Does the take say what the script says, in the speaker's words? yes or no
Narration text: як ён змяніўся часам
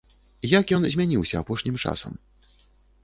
no